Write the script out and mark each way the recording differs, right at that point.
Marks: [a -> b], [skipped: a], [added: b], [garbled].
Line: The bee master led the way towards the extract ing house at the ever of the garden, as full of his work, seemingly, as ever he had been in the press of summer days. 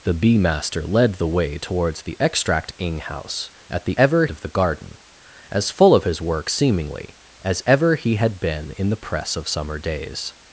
The bee master led the way towards the extract ing house at the ever of the garden, as full of his work, seemingly, as ever he had been in the press of summer days.